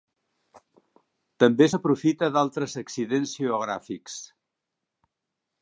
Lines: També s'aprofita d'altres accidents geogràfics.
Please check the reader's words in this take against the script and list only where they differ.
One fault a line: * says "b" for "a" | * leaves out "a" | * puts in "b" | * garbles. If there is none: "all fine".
all fine